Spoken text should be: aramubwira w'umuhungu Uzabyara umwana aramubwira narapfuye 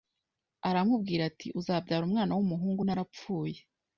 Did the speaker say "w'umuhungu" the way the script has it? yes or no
no